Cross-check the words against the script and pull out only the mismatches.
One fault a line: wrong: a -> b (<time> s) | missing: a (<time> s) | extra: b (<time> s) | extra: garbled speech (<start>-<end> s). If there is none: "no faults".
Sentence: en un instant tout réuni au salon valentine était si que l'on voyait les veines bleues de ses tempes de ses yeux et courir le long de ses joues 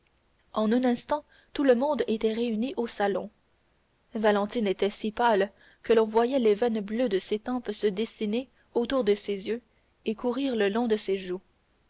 extra: le monde était (1.6 s)
extra: pâle (5.1 s)
extra: se dessiner autour (7.7 s)